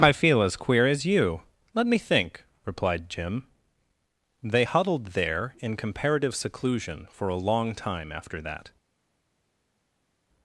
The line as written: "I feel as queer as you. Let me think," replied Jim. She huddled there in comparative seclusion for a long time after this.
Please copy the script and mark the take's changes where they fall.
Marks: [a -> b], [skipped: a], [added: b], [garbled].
"I feel as queer as you. Let me think," replied Jim. [She -> They] huddled there in comparative seclusion for a long time after [this. -> that]